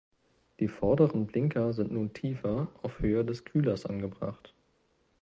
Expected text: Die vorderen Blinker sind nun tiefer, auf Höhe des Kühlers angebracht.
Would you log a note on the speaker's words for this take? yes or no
no